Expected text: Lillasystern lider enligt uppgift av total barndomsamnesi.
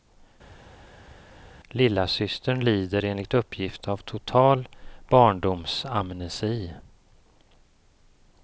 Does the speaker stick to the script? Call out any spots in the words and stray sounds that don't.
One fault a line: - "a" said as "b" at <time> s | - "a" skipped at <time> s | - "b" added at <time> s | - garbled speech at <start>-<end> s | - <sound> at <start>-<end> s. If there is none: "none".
none